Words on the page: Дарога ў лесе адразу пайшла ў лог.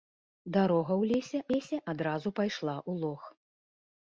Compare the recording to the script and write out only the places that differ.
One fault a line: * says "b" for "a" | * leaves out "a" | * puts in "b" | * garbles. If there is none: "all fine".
* puts in "лесе"